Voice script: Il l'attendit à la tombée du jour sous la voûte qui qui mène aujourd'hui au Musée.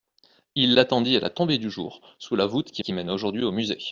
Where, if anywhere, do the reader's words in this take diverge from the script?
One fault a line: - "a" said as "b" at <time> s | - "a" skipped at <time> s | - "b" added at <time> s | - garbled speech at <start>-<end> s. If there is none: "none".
none